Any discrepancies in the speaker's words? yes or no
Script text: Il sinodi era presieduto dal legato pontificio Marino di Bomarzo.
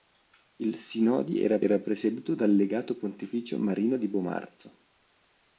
yes